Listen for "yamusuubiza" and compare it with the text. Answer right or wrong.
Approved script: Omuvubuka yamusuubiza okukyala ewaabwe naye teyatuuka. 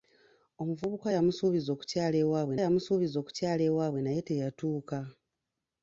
right